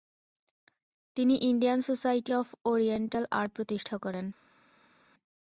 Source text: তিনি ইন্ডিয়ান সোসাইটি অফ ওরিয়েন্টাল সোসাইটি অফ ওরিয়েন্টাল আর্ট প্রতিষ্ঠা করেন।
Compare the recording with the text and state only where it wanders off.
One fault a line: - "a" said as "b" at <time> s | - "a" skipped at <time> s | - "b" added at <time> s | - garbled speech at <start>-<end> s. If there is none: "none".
- "সোসাইটি অফ ওরিয়েন্টাল" skipped at 3.2 s